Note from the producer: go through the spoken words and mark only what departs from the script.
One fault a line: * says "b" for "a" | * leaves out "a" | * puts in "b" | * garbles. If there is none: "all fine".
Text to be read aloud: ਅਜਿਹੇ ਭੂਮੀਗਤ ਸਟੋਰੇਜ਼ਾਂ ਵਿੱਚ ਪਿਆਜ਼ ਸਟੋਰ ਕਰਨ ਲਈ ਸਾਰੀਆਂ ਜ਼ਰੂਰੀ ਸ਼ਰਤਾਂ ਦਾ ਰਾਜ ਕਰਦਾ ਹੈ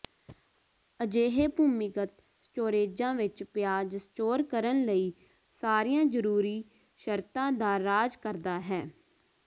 all fine